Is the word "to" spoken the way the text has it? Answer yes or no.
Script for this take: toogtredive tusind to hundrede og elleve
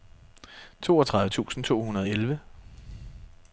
yes